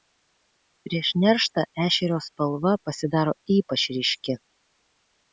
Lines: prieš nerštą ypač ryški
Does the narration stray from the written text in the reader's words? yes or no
yes